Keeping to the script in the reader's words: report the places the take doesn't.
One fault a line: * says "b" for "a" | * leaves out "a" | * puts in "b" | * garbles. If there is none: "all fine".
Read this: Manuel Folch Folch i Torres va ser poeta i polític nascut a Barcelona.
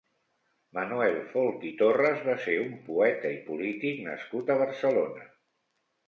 * leaves out "Folch"
* puts in "un"